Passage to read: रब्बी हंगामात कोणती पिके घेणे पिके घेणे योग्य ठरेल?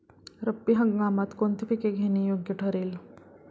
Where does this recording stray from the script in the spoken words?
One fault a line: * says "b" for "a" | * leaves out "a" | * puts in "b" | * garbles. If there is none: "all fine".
* leaves out "पिके घेणे"